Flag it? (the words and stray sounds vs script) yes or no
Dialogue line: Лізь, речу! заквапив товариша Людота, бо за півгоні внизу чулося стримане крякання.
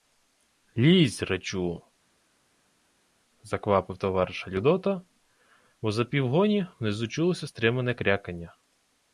no